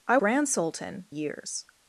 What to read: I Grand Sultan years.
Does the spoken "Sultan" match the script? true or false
true